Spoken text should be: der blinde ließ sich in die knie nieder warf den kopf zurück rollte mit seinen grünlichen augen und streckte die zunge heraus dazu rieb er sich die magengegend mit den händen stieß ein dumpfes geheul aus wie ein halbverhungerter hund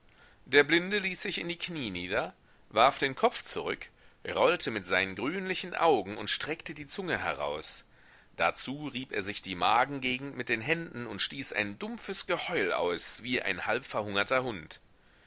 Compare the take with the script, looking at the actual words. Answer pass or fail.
fail